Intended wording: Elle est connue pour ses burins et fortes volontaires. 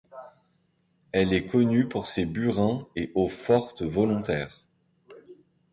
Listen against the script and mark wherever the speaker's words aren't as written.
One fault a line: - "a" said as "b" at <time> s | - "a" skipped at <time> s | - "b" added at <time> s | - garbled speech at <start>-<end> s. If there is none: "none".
- "eaux" added at 3.1 s